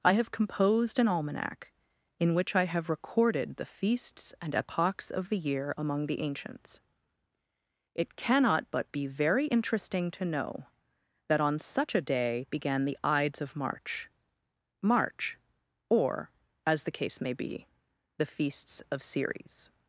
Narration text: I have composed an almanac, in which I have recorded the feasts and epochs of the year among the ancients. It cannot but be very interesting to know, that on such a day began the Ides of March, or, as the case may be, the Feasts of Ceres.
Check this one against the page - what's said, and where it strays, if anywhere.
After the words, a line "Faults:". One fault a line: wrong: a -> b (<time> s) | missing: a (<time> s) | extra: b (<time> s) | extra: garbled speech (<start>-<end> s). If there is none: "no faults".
I have composed an almanac, in which I have recorded the feasts and epochs of the year among the ancients. It cannot but be very interesting to know, that on such a day began the Ides of March March, or, as the case may be, the Feasts of Ceres.
Faults:
extra: March (14.8 s)